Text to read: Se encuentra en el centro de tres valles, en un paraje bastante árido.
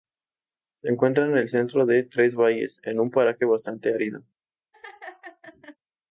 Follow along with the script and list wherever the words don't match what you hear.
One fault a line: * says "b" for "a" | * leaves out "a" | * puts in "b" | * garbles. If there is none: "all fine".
all fine